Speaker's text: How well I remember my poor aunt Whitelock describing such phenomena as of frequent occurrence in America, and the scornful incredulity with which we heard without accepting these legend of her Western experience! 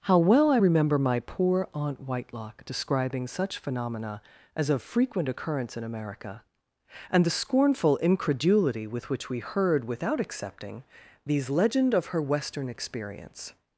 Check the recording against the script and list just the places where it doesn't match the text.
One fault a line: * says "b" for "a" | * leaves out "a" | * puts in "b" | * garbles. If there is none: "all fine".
all fine